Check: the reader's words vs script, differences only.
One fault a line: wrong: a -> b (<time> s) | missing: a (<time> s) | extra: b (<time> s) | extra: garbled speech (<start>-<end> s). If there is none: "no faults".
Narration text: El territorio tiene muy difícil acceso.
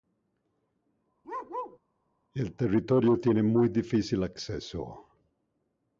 no faults